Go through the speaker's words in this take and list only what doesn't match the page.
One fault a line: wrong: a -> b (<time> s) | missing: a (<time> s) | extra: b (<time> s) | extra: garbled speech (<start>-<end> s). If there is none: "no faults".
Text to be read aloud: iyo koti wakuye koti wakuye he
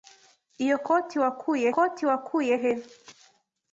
no faults